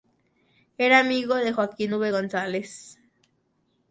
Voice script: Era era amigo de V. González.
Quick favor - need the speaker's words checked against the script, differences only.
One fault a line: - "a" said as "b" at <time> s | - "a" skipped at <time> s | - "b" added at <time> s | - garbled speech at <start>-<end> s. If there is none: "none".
- "era" skipped at 1.0 s
- "Joaquín" added at 1.5 s